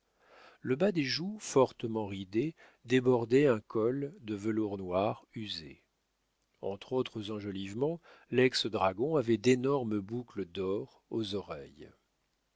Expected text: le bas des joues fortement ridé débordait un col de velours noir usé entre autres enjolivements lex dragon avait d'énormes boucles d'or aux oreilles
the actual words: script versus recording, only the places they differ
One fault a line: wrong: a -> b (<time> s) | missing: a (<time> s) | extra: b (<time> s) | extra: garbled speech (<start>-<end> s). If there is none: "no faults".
no faults